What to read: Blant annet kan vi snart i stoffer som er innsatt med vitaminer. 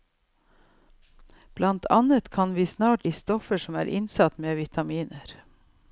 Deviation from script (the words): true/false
false